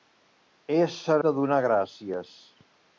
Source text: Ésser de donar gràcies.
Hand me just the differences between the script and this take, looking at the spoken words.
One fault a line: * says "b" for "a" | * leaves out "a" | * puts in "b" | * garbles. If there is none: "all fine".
all fine